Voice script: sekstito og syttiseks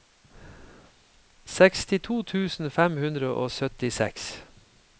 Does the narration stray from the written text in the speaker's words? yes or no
yes